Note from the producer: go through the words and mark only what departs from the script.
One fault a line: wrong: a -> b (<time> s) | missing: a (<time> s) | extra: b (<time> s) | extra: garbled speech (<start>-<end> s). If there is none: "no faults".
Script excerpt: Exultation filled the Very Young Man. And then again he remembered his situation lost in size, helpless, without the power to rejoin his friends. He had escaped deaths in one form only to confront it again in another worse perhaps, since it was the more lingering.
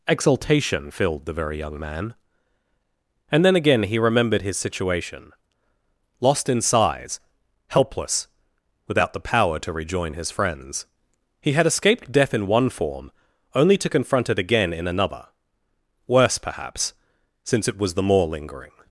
wrong: deaths -> death (12.1 s)